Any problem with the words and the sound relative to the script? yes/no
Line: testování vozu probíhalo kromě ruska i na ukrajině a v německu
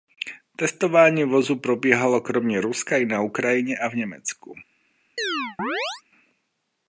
yes